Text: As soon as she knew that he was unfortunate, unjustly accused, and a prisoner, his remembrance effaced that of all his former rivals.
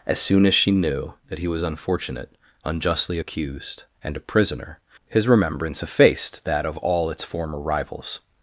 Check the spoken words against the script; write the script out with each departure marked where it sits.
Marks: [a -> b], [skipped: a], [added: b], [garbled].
As soon as she knew that he was unfortunate, unjustly accused, and a prisoner, his remembrance effaced that of all [his -> its] former rivals.